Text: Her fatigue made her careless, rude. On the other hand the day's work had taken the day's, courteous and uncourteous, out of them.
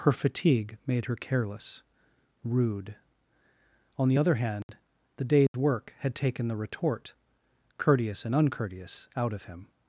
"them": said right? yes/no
no